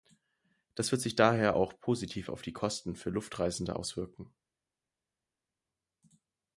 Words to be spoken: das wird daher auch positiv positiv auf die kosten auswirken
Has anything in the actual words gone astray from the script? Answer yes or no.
yes